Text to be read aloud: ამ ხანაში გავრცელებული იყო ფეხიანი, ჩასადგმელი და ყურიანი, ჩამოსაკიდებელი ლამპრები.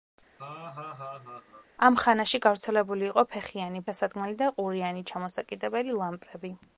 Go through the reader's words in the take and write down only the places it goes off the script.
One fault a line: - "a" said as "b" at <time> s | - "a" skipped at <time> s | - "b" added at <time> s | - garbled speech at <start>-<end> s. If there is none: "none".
none